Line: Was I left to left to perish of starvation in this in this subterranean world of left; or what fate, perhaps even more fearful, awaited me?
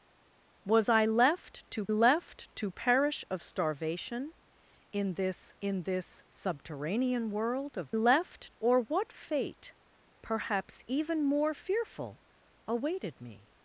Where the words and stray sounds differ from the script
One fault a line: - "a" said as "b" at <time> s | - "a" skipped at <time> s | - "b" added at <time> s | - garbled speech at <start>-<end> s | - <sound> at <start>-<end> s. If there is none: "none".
none